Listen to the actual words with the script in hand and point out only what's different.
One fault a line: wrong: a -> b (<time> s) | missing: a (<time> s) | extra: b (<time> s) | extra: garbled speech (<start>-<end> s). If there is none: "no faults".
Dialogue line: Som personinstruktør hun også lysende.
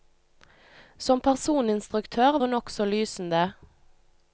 no faults